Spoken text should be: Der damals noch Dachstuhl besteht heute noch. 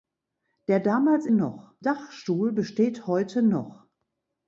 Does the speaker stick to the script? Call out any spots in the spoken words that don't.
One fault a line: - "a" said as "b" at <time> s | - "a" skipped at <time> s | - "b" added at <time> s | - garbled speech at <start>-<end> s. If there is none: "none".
none